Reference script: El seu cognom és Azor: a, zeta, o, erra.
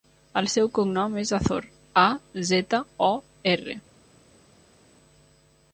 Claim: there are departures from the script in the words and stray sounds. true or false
false